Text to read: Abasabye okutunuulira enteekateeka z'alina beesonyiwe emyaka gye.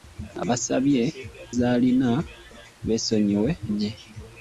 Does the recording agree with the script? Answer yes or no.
no